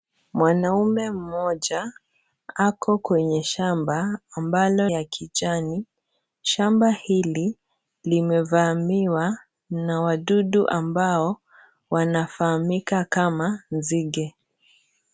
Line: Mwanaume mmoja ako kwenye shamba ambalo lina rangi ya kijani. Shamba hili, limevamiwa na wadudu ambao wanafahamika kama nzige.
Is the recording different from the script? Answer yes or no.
yes